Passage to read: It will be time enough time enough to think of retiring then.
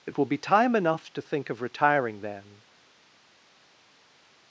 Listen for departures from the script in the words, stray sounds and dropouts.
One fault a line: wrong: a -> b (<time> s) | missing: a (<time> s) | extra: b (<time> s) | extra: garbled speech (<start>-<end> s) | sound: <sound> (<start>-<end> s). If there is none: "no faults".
missing: time enough (1.1 s)